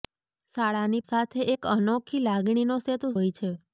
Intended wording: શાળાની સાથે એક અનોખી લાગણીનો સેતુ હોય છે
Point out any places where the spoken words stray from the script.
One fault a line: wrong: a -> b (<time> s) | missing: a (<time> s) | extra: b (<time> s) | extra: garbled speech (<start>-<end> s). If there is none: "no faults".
no faults